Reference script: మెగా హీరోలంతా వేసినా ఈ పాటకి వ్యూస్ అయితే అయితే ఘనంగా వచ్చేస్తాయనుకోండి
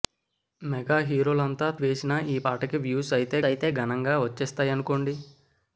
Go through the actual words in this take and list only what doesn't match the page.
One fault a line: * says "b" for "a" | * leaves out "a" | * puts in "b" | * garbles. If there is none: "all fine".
all fine